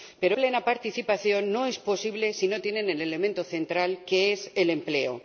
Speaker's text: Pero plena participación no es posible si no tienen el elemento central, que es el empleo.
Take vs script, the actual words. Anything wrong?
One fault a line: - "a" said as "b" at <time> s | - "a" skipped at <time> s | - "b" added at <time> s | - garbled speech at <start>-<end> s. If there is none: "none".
none